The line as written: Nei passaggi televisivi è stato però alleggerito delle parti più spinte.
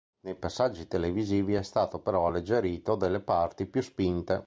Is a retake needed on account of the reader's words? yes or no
no